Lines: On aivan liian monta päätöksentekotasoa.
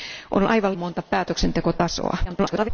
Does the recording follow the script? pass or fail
fail